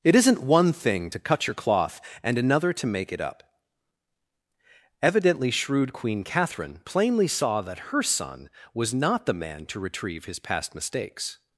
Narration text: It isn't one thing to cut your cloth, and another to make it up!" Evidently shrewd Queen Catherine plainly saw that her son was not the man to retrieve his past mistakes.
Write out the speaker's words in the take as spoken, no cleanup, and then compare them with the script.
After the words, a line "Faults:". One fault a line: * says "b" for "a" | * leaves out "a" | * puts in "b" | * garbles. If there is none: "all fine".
It isn't one thing to cut your cloth, and another to make it up!" Evidently shrewd Queen Catherine plainly saw that her son was not the man to retrieve his past mistakes.
Faults:
all fine